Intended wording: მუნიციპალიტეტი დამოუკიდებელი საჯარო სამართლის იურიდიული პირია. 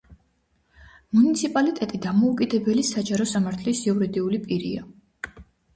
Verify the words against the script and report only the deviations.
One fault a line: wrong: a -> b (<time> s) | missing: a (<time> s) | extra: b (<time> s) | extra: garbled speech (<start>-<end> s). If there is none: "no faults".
no faults